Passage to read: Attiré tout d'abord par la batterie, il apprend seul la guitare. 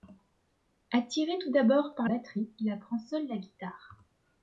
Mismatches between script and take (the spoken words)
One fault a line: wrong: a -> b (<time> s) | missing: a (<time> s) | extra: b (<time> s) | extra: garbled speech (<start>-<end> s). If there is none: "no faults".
missing: la (2.1 s)